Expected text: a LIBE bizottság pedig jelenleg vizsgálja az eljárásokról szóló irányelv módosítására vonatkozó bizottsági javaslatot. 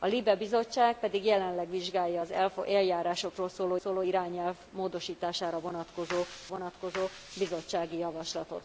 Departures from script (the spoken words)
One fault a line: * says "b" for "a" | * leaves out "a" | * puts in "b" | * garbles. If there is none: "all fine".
* puts in "szóló"
* puts in "vonatkozó"